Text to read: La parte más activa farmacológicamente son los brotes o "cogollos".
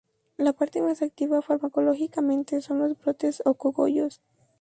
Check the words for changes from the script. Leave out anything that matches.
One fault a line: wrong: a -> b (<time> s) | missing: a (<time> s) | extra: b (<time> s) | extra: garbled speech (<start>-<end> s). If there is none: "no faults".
no faults